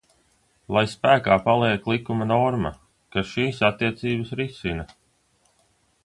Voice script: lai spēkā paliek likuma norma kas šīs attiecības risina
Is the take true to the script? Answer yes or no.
yes